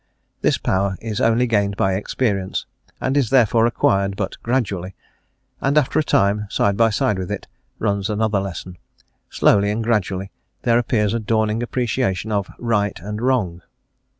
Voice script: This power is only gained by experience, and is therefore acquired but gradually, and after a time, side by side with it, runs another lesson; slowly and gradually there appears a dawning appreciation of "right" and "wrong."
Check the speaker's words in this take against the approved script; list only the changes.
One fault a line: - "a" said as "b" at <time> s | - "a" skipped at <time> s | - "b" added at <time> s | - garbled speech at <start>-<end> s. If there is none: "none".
none